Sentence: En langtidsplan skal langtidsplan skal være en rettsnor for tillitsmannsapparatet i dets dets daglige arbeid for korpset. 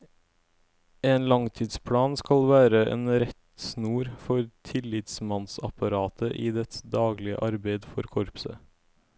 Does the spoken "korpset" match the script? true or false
true